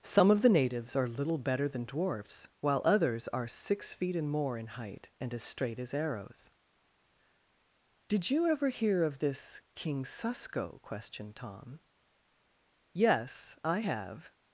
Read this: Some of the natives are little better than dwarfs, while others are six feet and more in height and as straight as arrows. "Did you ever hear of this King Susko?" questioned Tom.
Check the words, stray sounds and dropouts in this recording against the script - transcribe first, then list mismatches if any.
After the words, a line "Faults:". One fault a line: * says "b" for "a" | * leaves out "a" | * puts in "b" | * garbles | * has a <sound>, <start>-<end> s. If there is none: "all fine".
Some of the natives are little better than dwarfs, while others are six feet and more in height and as straight as arrows. "Did you ever hear of this King Susko?" questioned Tom. "Yes; I have
Faults:
* puts in "Yes I have"